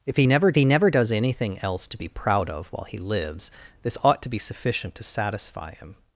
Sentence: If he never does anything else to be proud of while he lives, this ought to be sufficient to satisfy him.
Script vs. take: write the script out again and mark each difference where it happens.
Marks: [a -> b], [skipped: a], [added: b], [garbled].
If he never [added: he never] does anything else to be proud of while he lives, this ought to be sufficient to satisfy him.